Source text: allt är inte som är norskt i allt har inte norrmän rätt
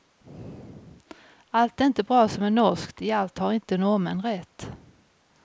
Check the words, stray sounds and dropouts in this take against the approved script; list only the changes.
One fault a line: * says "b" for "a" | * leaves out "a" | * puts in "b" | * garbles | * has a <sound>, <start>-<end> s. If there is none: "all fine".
* puts in "bra"